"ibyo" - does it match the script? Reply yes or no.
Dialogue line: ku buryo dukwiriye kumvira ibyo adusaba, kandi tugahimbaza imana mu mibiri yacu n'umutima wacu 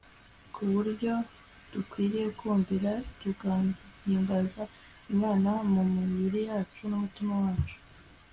no